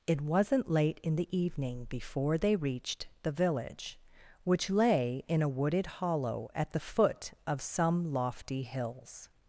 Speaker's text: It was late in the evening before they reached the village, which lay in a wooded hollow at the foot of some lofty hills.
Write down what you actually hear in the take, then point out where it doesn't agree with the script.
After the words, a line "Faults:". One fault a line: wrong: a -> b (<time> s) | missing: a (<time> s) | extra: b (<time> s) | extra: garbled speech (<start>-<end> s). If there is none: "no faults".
It wasn't late in the evening before they reached the village, which lay in a wooded hollow at the foot of some lofty hills.
Faults:
wrong: was -> wasn't (0.2 s)